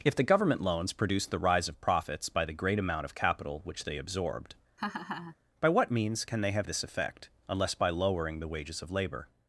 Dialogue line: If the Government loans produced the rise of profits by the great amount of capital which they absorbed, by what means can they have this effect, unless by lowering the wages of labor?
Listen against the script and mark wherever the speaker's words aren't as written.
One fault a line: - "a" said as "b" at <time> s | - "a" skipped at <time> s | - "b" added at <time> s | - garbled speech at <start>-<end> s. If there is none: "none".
none